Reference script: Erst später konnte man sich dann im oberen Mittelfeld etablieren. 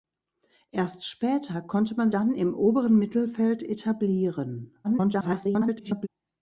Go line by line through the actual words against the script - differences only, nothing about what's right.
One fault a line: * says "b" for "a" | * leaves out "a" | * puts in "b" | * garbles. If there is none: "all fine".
* leaves out "sich"
* garbles